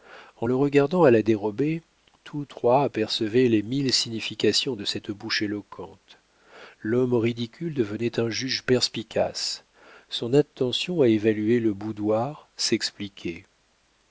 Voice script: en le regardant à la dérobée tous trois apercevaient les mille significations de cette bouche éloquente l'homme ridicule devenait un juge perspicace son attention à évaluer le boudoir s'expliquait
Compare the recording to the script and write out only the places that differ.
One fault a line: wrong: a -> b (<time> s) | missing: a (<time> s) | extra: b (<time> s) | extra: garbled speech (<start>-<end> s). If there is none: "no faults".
no faults